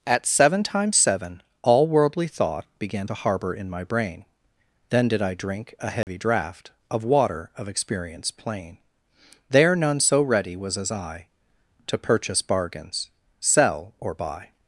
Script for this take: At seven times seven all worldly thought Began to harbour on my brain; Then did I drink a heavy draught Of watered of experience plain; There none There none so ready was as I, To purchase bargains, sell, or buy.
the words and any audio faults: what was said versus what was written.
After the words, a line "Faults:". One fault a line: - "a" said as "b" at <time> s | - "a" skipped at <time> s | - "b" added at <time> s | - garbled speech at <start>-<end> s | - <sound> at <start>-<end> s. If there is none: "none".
At seven times seven all worldly thought Began to harbour in my brain; Then did I drink a heavy draught Of water of experience plain; There none so ready was as I, To purchase bargains, sell, or buy.
Faults:
- "on" said as "in" at 3.5 s
- dropout at 6.0-6.1 s
- "watered" said as "water" at 7.0 s
- "There none" skipped at 10.0 s